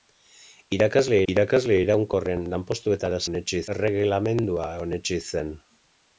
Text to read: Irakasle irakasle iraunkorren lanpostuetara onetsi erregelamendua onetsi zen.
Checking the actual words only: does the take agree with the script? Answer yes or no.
yes